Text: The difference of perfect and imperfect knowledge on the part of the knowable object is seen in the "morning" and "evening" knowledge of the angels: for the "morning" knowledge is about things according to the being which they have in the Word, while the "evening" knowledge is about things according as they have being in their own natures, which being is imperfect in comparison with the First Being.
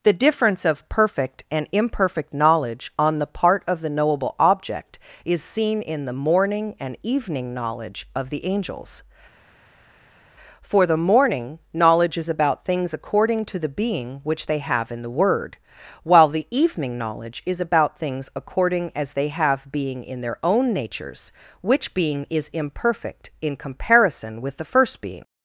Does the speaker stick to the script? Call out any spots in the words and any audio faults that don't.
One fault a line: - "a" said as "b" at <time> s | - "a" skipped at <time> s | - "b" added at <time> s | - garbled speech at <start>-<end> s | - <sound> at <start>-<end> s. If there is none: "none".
none